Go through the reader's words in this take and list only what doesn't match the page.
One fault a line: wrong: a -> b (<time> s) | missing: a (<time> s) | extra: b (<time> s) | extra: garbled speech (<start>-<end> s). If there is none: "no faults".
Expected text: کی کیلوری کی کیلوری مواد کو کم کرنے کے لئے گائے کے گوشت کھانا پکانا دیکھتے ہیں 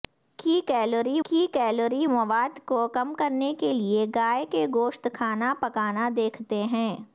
no faults